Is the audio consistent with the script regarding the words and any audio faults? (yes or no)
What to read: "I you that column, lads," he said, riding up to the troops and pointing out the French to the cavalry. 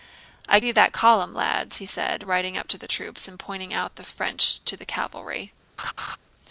no